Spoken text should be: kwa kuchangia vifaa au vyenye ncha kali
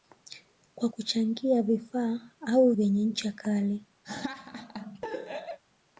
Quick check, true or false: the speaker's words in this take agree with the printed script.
true